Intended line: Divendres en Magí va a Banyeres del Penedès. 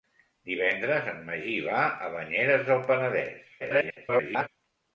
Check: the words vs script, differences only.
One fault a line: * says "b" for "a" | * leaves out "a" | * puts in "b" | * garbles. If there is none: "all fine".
* garbles